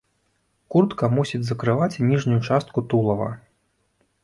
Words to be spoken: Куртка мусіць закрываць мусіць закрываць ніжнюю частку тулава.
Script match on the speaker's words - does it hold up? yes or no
no